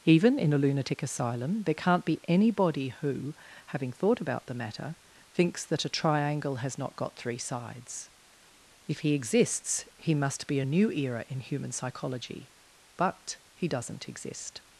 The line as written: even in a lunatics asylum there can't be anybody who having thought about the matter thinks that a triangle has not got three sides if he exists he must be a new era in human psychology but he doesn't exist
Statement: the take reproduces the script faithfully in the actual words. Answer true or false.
false